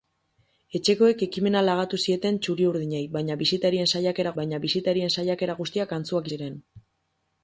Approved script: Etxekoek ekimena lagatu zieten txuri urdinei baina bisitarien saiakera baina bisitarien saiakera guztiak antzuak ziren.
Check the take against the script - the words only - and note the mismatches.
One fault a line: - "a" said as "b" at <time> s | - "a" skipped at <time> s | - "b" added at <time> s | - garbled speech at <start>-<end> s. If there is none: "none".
none